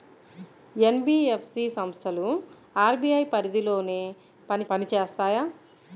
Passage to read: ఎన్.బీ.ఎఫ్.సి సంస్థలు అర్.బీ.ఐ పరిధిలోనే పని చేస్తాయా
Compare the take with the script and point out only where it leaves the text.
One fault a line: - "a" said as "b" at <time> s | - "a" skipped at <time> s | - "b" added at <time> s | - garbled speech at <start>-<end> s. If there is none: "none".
- "పని" added at 4.7 s